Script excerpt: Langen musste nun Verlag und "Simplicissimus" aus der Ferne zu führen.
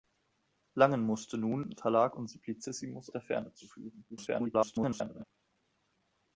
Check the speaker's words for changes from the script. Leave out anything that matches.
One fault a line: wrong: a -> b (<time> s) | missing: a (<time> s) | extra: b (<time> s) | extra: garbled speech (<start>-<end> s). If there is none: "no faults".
missing: aus (3.1 s)
extra: garbled speech (4.1-5.2 s)